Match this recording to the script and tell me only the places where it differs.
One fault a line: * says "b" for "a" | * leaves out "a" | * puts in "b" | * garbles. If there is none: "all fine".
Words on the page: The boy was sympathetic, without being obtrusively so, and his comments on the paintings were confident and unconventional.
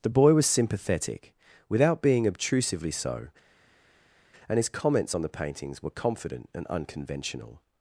all fine